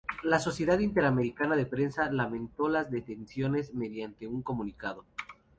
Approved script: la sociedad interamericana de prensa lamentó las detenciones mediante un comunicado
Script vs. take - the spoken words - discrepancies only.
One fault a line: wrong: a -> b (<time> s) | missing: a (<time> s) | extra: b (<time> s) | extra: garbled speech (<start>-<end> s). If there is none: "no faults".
no faults